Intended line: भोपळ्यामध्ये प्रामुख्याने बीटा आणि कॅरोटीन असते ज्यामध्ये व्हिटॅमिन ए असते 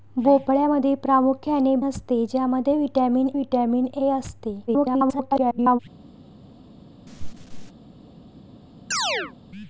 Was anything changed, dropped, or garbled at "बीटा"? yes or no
yes